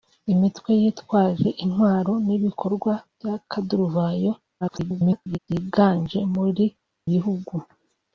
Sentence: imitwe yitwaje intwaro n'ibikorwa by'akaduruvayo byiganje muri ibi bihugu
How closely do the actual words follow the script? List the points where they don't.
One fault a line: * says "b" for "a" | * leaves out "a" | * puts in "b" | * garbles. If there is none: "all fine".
* garbles
* leaves out "ibi"